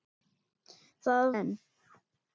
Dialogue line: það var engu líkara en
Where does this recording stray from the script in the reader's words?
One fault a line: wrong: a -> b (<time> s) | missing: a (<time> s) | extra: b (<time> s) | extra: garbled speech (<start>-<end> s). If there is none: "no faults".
missing: var engu líkara (1.3 s)